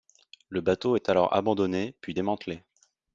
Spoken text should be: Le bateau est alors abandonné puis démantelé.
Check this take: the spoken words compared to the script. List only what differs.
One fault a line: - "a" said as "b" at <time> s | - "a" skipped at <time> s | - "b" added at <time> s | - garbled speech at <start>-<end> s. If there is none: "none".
none